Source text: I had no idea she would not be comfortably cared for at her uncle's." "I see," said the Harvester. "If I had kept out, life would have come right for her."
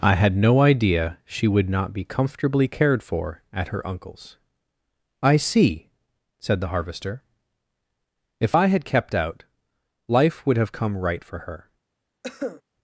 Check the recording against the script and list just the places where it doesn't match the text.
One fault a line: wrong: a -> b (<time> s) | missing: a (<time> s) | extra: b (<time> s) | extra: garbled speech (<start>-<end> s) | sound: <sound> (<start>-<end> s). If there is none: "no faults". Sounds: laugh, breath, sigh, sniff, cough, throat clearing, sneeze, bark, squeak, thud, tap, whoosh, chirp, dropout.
sound: cough (12.2-12.6 s)